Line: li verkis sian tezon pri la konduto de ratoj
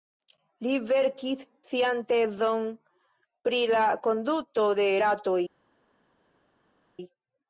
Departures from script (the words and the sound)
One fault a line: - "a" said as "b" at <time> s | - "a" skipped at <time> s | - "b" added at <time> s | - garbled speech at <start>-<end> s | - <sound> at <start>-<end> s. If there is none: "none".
none